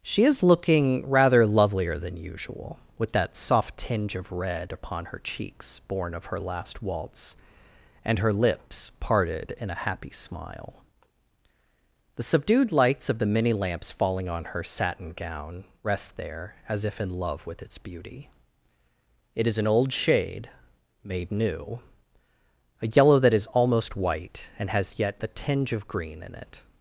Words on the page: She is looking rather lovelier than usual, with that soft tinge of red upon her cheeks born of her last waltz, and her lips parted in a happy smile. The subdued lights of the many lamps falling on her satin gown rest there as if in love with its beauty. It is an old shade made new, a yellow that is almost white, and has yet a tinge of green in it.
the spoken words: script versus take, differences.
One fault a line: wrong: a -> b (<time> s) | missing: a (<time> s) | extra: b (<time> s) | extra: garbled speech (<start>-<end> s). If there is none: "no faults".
wrong: a -> the (25.2 s)